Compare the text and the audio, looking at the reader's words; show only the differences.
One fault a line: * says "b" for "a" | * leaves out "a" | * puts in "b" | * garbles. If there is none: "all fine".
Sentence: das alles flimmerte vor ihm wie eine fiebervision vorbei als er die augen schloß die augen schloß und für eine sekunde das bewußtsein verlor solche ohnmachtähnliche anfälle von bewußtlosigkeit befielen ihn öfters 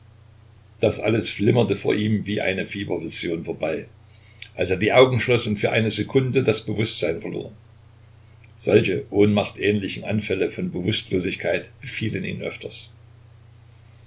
* leaves out "die augen schloß"